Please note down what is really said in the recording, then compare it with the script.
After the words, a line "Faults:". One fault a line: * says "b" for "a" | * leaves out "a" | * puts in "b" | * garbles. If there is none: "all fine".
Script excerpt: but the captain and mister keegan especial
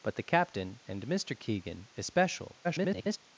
but the captain and mister keegan especial [garbled]
Faults:
* garbles